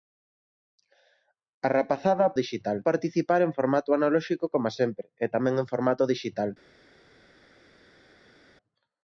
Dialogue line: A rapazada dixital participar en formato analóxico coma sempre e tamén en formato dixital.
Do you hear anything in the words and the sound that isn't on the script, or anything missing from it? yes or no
no